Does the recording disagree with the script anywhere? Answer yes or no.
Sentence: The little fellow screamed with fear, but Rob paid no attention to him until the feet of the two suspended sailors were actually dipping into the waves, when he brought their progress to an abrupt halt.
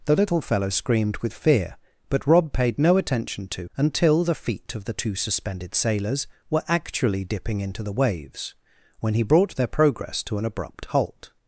yes